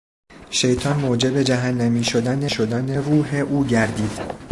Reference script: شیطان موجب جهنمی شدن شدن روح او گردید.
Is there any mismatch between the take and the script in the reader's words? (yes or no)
no